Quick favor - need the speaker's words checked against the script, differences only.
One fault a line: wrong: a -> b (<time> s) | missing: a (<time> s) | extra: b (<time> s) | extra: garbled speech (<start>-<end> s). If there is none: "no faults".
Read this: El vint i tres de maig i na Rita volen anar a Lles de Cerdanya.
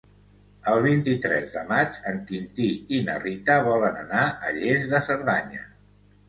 extra: en Quintí (2.1 s)